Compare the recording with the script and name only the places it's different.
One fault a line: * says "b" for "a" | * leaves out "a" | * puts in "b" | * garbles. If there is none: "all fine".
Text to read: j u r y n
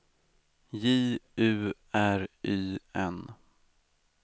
all fine